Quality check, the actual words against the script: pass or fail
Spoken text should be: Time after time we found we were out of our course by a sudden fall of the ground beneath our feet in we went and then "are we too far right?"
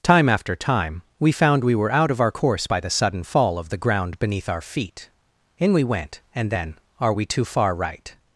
fail